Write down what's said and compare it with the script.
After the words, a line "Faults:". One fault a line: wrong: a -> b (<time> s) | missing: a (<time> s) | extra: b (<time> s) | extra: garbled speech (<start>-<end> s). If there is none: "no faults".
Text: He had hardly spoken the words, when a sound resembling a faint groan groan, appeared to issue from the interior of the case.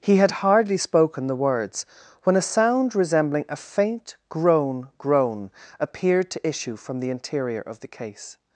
He had hardly spoken the words, when a sound resembling a faint groan groan, appeared to issue from the interior of the case.
Faults:
no faults